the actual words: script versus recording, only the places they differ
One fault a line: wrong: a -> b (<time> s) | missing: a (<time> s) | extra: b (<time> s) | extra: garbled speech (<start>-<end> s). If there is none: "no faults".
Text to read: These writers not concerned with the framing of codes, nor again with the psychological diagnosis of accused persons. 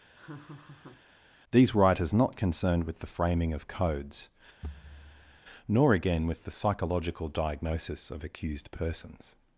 no faults